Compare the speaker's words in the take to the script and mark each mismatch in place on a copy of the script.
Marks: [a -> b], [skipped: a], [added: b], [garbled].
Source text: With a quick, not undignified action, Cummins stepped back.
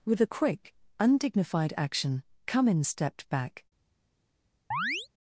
With a quick, [skipped: not] undignified action, Cummins stepped back.